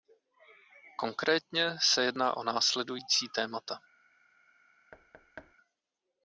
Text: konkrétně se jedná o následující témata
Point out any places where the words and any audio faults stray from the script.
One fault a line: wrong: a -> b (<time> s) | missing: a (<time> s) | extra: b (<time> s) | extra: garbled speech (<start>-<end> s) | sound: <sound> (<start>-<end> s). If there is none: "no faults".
sound: thud (4.9-5.5 s)